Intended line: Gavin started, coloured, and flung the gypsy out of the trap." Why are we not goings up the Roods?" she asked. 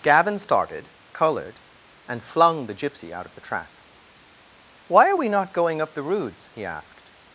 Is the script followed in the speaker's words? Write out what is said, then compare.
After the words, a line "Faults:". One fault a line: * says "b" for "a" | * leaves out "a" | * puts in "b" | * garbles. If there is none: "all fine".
Gavin started, coloured, and flung the gypsy out of the trap." Why are we not going up the Roods?" he asked.
Faults:
* says "going" for "goings"
* says "he" for "she"